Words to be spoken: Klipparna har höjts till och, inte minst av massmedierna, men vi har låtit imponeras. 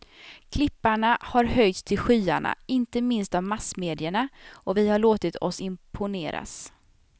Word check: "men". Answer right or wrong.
wrong